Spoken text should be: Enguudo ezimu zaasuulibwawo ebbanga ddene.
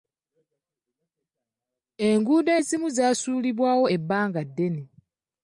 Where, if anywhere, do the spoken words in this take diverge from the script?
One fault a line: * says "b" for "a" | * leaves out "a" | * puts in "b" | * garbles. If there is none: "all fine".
all fine